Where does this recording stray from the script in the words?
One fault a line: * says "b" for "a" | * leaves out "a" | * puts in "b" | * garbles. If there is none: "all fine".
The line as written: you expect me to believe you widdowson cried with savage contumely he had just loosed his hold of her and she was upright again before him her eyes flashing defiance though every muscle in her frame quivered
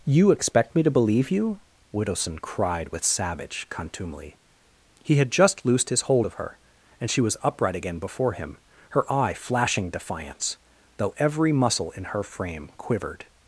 * says "eye" for "eyes"